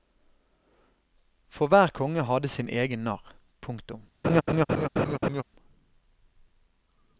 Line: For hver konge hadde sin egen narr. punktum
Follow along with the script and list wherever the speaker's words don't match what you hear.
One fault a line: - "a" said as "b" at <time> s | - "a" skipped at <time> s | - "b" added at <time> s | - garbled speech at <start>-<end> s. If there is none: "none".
none